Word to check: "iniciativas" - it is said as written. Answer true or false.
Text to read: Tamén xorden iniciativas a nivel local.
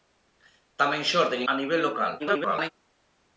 false